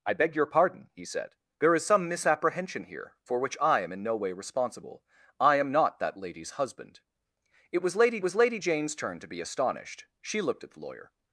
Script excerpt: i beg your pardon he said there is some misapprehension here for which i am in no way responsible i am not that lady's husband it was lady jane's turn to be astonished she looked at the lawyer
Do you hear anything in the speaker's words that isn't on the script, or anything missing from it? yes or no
yes